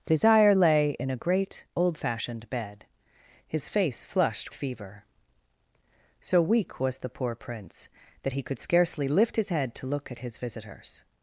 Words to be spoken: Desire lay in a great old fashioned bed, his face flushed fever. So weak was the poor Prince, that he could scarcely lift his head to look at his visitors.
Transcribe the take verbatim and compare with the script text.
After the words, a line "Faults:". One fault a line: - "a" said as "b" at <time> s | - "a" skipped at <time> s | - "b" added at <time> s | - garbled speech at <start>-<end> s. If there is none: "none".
Desire lay in a great old fashioned bed, his face flushed fever. So weak was the poor Prince, that he could scarcely lift his head to look at his visitors.
Faults:
none